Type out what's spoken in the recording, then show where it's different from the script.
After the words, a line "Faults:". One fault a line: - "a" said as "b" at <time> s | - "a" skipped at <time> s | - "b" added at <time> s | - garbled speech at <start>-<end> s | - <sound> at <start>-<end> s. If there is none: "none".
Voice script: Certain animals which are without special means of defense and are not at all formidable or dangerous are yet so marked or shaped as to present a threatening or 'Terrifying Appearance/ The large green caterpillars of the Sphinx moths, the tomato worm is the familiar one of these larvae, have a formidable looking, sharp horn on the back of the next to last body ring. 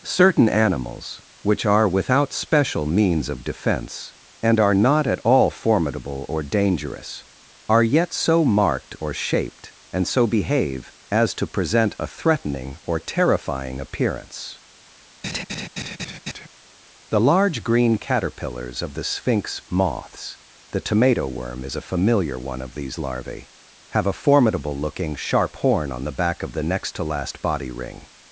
Certain animals which are without special means of defense and are not at all formidable or dangerous are yet so marked or shaped and so behave as to present a threatening or 'Terrifying Appearance/ The large green caterpillars of the Sphinx moths, the tomato worm is a familiar one of these larvae, have a formidable looking, sharp horn on the back of the next to last body ring.
Faults:
- "and so behave" added at 9.9 s
- laugh at 15.2-16.5 s
- "the" said as "a" at 21.7 s